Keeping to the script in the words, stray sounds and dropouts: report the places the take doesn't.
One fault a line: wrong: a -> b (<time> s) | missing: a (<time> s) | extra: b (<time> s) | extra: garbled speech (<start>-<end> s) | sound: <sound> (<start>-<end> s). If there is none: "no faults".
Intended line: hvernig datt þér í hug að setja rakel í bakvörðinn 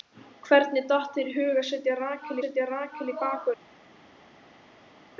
extra: setja rakel (2.4 s)